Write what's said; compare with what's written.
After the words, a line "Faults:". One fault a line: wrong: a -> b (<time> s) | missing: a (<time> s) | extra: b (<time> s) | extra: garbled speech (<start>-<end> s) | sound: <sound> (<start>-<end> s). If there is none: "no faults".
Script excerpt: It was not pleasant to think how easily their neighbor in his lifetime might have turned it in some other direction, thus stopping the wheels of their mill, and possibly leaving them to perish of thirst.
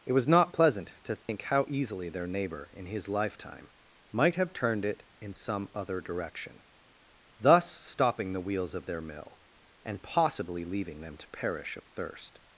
It was not pleasant to think how easily their neighbor in his lifetime might have turned it in some other direction, thus stopping the wheels of their mill, and possibly leaving them to perish of thirst.
Faults:
sound: dropout (1.2-1.3 s)